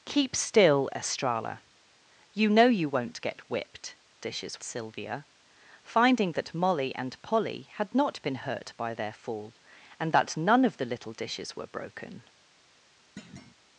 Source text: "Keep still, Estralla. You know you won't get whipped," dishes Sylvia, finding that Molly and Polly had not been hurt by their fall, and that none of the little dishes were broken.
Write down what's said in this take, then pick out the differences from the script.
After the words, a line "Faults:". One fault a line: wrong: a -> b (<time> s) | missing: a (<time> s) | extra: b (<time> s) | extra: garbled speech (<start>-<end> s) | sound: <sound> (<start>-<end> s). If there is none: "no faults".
"Keep still, Estralla. You know you won't get whipped," dishes Sylvia, finding that Molly and Polly had not been hurt by their fall, and that none of the little dishes were broken.
Faults:
sound: thud (13.2-13.5 s)